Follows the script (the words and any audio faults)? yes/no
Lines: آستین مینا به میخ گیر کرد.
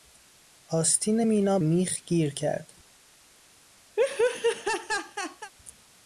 no